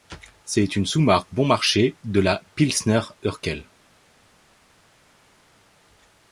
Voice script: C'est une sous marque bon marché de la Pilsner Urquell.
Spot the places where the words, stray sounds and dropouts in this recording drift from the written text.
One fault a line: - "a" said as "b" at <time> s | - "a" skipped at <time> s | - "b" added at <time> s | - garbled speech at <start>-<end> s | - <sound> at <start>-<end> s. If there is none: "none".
none